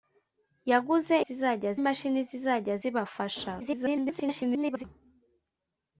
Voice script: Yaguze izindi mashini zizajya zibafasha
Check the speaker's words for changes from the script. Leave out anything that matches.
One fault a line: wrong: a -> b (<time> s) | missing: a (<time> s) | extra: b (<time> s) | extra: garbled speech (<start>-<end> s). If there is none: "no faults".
wrong: izindi -> zizajya (1.3 s)
extra: garbled speech (3.6-4.8 s)